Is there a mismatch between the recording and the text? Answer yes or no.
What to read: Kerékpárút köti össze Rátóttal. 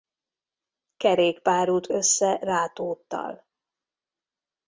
yes